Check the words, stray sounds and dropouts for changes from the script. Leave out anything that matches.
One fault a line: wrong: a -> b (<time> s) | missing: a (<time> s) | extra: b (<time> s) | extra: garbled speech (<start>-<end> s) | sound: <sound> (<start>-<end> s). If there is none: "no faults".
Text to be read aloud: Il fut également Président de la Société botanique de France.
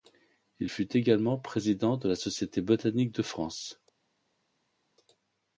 no faults